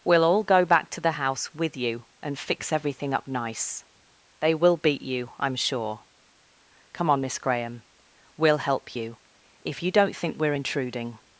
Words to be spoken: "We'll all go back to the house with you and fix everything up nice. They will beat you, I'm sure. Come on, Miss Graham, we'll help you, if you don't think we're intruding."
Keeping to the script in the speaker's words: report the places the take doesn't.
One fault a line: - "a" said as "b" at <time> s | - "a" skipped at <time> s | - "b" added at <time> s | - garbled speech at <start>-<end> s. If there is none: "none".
none